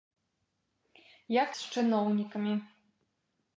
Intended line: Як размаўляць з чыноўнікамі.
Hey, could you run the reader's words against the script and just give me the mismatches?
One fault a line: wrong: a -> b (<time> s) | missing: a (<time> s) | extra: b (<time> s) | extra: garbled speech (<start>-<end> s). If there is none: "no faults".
missing: размаўляць (1.5 s)